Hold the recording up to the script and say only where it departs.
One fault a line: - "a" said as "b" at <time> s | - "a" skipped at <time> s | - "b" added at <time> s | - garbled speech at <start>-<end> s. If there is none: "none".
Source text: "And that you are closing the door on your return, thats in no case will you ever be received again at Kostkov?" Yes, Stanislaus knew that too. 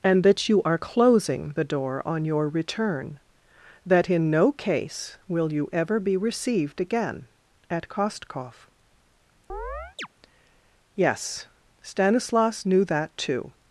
- "thats" said as "that" at 3.8 s